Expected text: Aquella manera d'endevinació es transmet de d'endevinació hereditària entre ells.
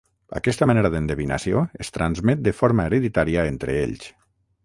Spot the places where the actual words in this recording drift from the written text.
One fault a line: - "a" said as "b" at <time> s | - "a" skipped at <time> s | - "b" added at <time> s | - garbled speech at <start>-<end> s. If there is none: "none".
- "Aquella" said as "Aquesta" at 0.4 s
- "d'endevinació" said as "forma" at 2.6 s